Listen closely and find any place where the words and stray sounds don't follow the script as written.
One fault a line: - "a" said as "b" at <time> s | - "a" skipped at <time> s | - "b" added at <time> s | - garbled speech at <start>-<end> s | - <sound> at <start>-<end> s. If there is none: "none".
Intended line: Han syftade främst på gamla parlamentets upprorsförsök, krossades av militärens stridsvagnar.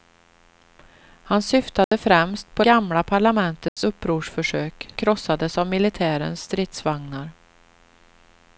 - dropout at 1.8-1.9 s
- dropout at 3.7-3.8 s